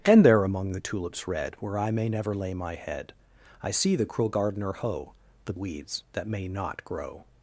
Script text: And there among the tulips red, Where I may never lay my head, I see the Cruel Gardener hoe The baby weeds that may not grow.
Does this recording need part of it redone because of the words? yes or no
yes